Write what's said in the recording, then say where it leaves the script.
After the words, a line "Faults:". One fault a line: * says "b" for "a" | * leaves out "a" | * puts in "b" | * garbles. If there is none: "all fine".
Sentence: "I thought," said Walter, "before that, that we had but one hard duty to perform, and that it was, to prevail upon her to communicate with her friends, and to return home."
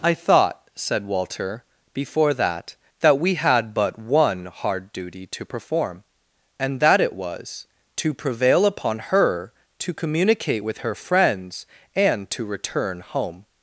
"I thought," said Walter, "before that, that we had but one hard duty to perform, and that it was, to prevail upon her to communicate with her friends, and to return home."
Faults:
all fine